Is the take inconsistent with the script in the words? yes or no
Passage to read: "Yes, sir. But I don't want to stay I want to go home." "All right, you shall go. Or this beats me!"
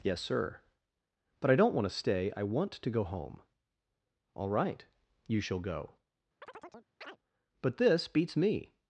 yes